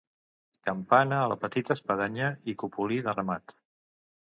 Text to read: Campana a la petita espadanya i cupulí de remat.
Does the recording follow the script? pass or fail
pass